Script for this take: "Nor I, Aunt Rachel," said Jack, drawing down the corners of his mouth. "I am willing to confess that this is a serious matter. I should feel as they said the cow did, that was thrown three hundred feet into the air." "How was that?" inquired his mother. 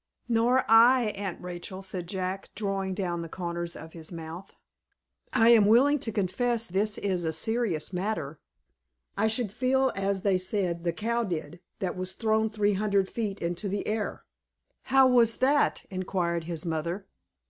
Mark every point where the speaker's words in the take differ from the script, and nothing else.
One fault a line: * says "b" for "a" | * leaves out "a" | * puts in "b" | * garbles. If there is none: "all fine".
* leaves out "that"